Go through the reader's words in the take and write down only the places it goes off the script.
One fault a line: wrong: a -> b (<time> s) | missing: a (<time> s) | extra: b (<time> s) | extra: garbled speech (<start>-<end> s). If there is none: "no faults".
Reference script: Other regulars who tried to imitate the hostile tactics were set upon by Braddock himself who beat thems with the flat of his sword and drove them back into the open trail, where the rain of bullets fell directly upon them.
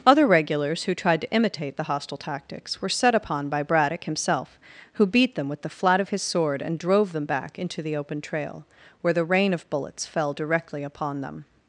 wrong: thems -> them (5.4 s)